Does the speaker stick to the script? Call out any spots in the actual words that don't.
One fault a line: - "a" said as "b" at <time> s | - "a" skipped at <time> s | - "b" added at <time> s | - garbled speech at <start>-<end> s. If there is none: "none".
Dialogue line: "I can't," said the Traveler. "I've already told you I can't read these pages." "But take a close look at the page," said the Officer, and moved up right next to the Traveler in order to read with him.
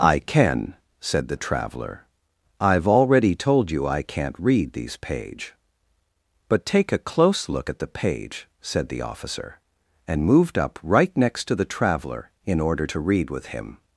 - "can't" said as "can" at 0.2 s
- "pages" said as "page" at 5.0 s